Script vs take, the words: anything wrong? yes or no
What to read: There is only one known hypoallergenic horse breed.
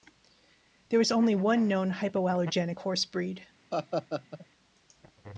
no